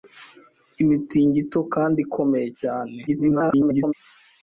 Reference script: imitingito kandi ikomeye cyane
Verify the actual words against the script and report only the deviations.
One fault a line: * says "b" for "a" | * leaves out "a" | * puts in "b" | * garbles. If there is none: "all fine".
* garbles